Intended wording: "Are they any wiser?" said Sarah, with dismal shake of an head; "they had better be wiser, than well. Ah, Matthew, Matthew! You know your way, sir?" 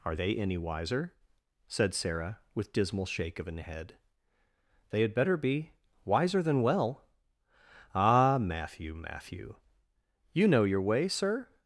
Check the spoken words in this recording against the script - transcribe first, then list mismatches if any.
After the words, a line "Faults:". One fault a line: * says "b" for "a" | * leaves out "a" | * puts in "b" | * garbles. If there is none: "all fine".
"Are they any wiser?" said Sarah, with dismal shake of an head; "they had better be wiser, than well. Ah, Matthew, Matthew! You know your way, sir?"
Faults:
all fine